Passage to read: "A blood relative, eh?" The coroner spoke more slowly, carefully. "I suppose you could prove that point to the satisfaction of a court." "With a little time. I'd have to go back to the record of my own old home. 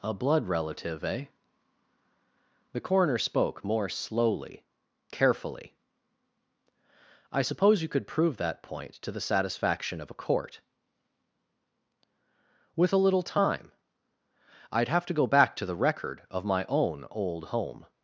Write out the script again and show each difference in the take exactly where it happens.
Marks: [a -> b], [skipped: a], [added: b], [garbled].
"A blood relative, eh?" The coroner spoke more slowly, carefully. "I suppose you could prove that point to the satisfaction of a court." "With a little time. I'd have to go back to the record of my own old home.